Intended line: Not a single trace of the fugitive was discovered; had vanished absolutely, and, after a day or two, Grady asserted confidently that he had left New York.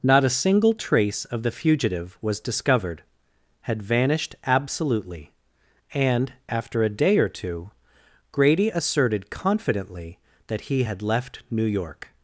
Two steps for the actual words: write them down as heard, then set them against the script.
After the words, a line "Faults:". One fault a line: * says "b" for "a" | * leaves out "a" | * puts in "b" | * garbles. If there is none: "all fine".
Not a single trace of the fugitive was discovered; had vanished absolutely, and, after a day or two, Grady asserted confidently that he had left New York.
Faults:
all fine